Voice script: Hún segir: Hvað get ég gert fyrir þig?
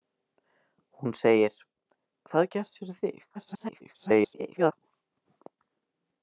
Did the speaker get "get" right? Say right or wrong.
wrong